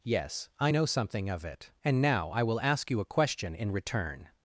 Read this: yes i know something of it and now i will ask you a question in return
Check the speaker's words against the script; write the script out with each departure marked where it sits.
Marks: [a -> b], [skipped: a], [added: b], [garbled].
yes i know something of it and now i will ask you a question in return